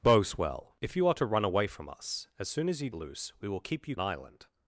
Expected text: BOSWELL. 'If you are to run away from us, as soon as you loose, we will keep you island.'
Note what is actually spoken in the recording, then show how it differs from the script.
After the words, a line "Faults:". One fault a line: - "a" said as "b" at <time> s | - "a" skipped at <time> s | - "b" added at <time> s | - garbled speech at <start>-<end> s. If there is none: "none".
BOSWELL. 'If you are to run away from us, as soon as you loose, we will keep you island.'
Faults:
none